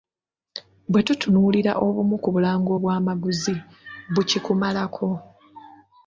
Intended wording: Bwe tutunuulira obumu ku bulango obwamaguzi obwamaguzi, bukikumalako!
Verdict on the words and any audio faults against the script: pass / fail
fail